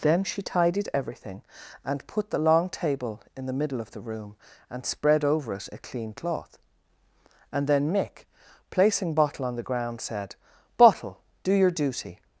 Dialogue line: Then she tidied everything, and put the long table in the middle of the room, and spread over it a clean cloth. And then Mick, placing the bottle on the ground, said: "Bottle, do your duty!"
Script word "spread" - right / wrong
right